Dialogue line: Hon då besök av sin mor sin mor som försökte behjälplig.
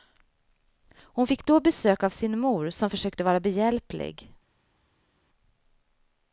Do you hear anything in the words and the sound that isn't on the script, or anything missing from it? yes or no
yes